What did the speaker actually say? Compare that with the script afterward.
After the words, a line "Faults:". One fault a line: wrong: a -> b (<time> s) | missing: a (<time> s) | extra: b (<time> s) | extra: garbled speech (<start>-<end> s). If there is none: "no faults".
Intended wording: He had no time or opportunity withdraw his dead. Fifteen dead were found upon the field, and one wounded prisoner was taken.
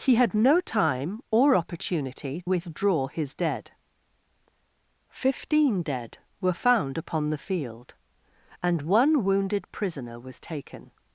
He had no time or opportunity withdraw his dead. Fifteen dead were found upon the field, and one wounded prisoner was taken.
Faults:
no faults